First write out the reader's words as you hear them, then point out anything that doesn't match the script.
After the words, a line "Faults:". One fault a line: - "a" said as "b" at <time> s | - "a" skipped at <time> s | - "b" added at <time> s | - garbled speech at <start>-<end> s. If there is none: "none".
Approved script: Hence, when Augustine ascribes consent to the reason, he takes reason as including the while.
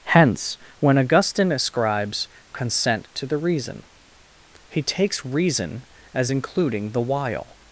Hence, when Augustine ascribes consent to the reason, he takes reason as including the while.
Faults:
none